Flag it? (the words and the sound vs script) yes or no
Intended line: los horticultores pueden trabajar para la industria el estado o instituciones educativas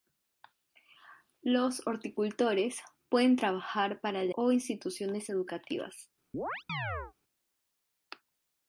yes